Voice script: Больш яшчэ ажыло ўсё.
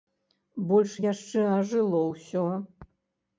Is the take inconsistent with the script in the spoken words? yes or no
no